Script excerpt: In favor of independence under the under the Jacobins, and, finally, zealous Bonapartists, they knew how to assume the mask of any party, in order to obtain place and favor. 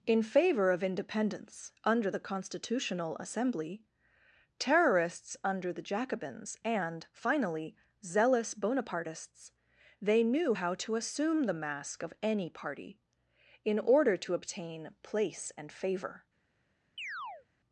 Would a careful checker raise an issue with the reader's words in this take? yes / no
yes